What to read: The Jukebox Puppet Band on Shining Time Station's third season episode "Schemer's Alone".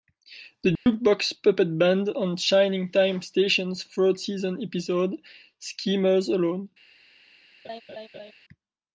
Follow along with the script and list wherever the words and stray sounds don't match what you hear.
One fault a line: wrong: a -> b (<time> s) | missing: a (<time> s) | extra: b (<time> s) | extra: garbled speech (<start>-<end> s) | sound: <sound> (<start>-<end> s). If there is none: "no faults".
sound: dropout (0.8-0.9 s)
sound: laugh (7.6-8.3 s)